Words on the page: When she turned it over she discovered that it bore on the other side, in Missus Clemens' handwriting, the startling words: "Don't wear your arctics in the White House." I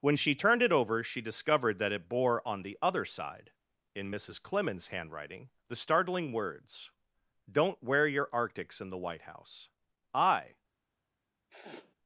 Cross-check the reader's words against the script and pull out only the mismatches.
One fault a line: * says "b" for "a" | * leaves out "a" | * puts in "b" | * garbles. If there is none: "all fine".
all fine